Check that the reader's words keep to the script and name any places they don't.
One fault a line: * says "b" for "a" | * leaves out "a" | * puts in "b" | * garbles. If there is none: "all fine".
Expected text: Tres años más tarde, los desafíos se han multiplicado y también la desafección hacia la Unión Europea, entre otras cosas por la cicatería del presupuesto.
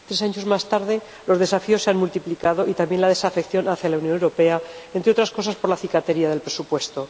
all fine